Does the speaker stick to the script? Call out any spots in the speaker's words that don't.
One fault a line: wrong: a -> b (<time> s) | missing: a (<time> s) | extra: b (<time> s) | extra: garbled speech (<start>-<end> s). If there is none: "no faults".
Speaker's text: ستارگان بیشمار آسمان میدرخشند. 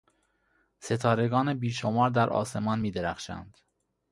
extra: در (2.1 s)